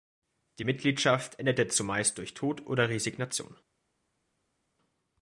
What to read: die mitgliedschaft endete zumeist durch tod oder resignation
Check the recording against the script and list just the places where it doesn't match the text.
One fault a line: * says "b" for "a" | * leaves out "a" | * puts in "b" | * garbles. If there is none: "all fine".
all fine